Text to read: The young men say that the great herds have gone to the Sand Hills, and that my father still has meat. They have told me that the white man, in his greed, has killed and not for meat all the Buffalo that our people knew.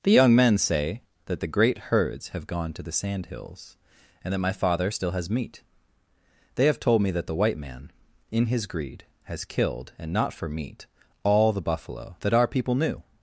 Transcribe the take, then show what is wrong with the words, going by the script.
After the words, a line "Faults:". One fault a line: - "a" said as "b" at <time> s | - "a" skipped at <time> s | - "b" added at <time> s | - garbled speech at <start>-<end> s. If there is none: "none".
The young men say that the great herds have gone to the Sand Hills, and that my father still has meat. They have told me that the white man, in his greed, has killed and not for meat all the Buffalo that our people knew.
Faults:
none